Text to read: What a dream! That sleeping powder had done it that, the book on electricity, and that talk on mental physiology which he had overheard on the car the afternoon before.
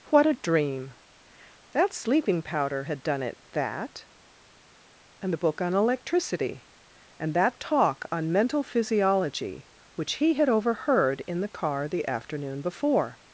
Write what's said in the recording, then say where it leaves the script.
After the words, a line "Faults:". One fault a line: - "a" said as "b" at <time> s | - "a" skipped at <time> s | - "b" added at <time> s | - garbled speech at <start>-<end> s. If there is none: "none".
What a dream! That sleeping powder had done it that, and the book on electricity, and that talk on mental physiology which he had overheard in the car the afternoon before.
Faults:
- "and" added at 5.2 s
- "on" said as "in" at 11.3 s